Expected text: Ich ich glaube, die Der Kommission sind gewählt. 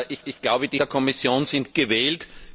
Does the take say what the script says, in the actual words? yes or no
yes